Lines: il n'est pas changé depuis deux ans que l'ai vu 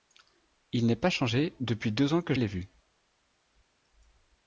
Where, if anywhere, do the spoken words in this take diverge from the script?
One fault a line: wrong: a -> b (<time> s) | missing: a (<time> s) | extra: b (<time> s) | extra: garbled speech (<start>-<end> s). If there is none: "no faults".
no faults